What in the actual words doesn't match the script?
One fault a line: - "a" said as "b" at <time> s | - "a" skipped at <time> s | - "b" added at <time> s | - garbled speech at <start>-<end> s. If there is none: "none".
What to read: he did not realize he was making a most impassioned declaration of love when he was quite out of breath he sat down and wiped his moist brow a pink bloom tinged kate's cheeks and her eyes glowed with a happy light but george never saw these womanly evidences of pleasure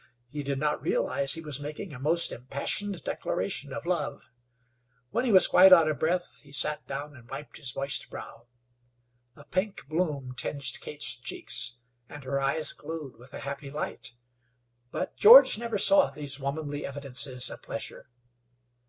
none